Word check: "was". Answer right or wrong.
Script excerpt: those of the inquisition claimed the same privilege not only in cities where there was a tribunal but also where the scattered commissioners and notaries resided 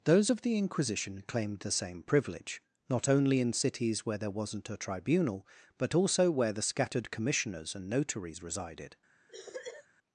wrong